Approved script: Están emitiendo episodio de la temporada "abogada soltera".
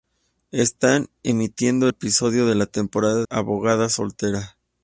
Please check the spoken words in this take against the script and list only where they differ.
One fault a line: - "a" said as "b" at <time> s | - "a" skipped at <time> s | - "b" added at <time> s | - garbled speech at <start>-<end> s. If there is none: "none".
none